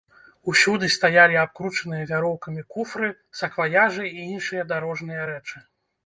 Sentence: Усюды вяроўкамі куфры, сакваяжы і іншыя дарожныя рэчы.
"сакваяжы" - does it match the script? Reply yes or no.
yes